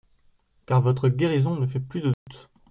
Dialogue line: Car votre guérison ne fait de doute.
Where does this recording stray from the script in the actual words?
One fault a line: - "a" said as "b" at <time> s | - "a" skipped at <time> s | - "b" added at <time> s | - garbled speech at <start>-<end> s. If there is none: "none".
- "plus" added at 1.8 s